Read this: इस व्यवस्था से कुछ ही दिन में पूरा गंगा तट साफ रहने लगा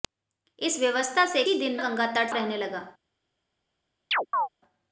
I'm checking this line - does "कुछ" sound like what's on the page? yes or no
no